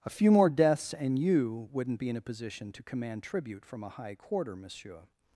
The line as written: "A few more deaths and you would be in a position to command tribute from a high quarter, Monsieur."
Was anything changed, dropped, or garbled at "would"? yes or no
yes